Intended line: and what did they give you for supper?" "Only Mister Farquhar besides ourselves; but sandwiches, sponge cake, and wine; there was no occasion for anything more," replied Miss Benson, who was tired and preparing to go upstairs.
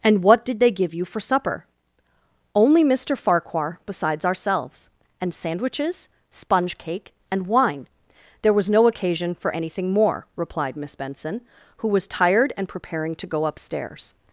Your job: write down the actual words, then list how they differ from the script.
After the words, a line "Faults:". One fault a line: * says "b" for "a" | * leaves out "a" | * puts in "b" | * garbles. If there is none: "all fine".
and what did they give you for supper?" "Only Mister Farquhar besides ourselves; and sandwiches, sponge cake, and wine; there was no occasion for anything more," replied Miss Benson, who was tired and preparing to go upstairs.
Faults:
* says "and" for "but"